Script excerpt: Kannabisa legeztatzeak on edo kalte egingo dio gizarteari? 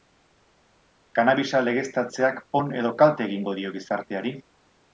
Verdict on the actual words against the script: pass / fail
pass